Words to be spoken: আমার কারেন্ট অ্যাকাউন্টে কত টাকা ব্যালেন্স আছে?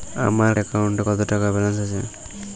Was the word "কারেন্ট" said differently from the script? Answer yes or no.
yes